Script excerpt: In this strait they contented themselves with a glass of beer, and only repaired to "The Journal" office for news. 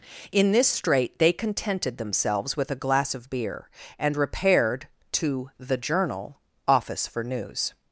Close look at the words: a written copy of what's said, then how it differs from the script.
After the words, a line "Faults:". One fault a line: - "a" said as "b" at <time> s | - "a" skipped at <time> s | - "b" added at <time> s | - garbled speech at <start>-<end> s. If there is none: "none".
In this strait they contented themselves with a glass of beer, and repaired to "The Journal" office for news.
Faults:
- "only" skipped at 4.2 s